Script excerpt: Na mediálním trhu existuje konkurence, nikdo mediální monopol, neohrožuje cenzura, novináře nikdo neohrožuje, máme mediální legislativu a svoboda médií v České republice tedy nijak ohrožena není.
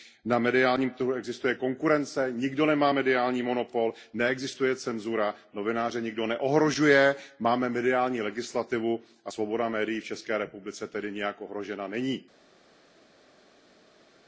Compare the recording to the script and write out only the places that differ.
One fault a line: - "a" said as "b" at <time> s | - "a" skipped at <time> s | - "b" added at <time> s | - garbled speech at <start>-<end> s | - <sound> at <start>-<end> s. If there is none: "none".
- "nemá" added at 2.6 s
- "neohrožuje" said as "neexistuje" at 4.1 s